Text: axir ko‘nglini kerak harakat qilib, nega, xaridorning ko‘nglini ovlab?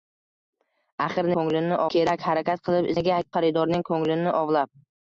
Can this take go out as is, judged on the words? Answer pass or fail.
pass